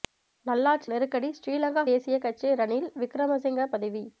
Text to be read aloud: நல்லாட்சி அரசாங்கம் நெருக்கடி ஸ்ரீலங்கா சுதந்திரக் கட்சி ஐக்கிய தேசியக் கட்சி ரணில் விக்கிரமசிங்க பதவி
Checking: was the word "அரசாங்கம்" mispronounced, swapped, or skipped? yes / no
yes